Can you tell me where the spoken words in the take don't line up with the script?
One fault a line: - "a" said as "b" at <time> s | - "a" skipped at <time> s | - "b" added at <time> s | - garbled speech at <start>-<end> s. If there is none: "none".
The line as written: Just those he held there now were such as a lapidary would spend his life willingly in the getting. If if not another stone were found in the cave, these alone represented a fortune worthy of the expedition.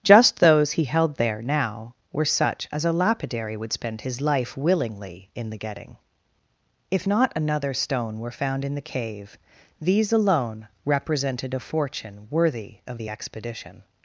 - "if" skipped at 7.1 s